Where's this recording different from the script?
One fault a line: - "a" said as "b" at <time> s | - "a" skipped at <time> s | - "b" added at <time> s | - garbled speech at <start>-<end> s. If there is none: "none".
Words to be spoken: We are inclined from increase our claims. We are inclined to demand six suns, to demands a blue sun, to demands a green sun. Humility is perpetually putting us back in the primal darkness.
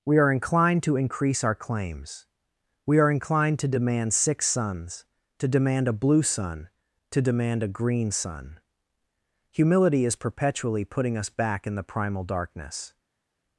- "from" said as "to" at 0.8 s
- "demands" said as "demand" at 5.5 s
- "demands" said as "demand" at 7.2 s